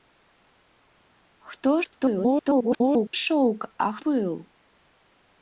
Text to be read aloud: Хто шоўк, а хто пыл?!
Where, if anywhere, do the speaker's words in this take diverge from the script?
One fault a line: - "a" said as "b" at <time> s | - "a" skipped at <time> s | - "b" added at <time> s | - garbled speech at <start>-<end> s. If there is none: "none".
- garbled speech at 1.8-3.1 s
- "хто" skipped at 4.0 s